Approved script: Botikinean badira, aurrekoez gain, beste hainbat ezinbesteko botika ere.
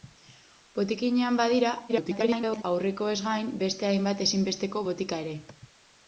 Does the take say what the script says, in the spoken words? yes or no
no